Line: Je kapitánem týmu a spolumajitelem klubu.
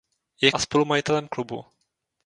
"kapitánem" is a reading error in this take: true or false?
true